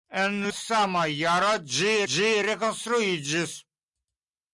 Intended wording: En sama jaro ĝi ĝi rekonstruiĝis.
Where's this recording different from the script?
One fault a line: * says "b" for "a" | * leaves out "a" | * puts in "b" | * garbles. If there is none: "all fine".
all fine